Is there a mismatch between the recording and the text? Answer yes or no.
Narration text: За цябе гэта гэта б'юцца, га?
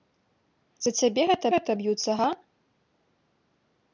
no